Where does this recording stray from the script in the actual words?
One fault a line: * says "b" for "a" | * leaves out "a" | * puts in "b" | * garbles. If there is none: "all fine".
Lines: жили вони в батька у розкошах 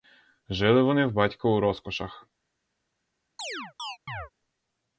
all fine